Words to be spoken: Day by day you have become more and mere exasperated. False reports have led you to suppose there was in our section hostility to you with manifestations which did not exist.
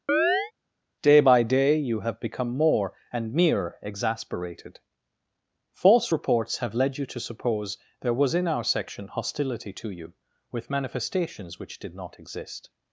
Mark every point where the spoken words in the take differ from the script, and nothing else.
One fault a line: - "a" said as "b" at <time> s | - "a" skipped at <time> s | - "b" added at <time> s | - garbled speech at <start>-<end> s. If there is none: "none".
none